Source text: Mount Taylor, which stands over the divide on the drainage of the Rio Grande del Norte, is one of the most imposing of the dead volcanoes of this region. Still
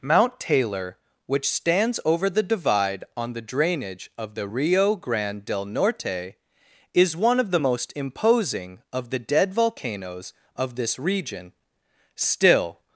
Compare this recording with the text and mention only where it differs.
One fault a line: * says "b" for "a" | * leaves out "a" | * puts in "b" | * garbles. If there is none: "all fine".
all fine